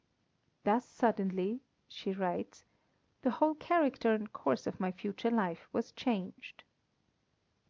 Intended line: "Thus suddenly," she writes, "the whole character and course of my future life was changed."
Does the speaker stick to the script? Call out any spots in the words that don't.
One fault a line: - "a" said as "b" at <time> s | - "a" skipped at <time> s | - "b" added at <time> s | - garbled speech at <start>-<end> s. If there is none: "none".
none